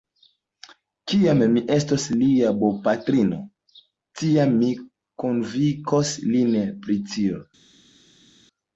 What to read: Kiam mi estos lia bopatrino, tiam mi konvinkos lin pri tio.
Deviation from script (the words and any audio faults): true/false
false